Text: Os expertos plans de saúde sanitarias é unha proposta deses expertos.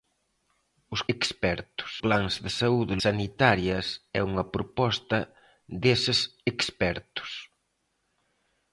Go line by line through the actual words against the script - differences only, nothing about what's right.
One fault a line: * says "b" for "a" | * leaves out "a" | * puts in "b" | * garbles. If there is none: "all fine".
all fine